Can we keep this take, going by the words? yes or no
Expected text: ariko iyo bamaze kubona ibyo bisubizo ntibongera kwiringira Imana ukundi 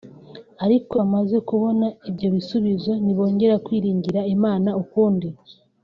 no